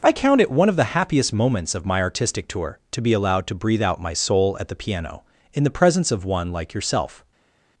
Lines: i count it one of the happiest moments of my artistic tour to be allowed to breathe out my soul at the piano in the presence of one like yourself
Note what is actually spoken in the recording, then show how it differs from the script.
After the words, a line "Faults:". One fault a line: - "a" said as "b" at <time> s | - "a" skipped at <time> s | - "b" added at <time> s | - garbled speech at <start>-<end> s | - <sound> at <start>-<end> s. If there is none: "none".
i count it one of the happiest moments of my artistic tour to be allowed to breathe out my soul at the piano in the presence of one like yourself
Faults:
none